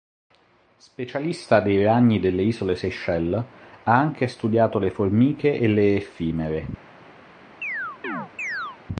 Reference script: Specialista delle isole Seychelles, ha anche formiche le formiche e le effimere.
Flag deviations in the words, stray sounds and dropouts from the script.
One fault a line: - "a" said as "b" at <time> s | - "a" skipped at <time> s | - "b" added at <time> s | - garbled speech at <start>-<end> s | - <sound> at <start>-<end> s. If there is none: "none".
- "dei ragni" added at 1.6 s
- "formiche" said as "studiato" at 4.3 s
- chirp at 7.6-8.8 s